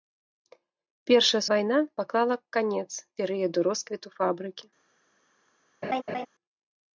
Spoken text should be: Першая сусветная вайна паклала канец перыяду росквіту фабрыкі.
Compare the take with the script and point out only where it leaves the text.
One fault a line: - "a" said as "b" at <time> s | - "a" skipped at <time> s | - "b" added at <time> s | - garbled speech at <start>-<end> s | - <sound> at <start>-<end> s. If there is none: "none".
- "сусветная" skipped at 1.4 s
- laugh at 5.8-6.3 s